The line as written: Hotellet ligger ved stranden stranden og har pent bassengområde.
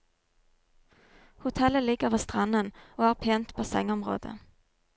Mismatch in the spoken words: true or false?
true